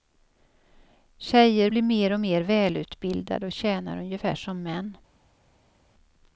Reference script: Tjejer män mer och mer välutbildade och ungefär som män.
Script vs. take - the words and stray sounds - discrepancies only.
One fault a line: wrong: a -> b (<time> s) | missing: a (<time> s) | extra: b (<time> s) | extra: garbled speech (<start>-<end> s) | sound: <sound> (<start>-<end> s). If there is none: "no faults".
wrong: män -> blir (1.7 s)
extra: tjänar (3.5 s)